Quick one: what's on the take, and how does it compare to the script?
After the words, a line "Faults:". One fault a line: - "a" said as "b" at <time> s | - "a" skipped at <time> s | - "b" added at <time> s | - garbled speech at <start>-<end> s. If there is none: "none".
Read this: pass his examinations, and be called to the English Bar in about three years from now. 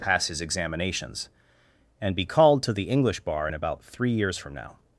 pass his examinations, and be called to the English Bar in about three years from now.
Faults:
none